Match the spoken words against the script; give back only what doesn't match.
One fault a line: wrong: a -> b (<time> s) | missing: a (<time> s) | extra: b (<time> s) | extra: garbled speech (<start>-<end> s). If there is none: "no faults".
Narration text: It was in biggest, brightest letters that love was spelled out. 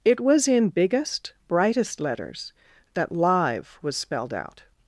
wrong: love -> live (3.1 s)